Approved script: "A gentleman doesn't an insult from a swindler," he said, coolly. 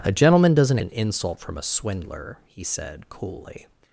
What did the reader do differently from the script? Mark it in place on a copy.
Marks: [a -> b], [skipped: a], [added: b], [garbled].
"A gentleman doesn't an insult from a swindler," he said, coolly.